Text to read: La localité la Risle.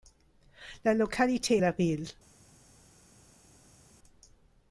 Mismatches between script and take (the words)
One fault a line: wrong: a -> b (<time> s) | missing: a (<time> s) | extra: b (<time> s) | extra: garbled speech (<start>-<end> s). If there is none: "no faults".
no faults